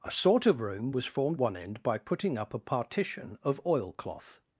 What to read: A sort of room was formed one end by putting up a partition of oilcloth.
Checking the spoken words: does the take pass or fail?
pass